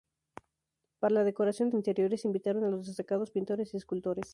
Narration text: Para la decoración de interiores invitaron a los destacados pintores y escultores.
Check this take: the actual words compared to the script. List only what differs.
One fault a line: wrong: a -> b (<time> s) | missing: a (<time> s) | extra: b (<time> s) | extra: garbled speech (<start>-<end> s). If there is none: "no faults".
no faults